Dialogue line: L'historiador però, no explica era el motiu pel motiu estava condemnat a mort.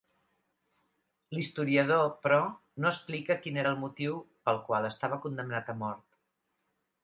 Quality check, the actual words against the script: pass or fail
fail